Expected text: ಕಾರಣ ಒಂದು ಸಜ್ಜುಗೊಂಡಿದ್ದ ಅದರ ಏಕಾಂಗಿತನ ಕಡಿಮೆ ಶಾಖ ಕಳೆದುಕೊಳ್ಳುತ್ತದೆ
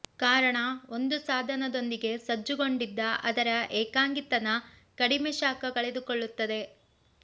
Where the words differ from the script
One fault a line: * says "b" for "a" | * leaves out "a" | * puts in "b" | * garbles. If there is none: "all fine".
* puts in "ಸಾಧನದೊಂದಿಗೆ"